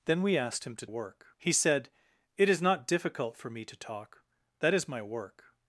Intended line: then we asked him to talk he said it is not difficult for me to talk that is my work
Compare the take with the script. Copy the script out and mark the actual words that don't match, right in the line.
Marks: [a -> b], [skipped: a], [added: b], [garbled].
then we asked him to [talk -> work] he said it is not difficult for me to talk that is my work